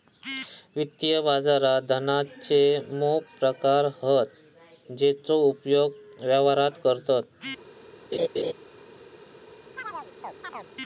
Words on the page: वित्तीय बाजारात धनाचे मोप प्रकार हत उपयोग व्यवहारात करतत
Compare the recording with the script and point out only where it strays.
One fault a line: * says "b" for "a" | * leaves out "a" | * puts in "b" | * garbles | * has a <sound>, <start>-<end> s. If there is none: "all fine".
* puts in "जेचो"
* has a laugh, 8.1-8.5 s
* has a chirp, 9.8-10.7 s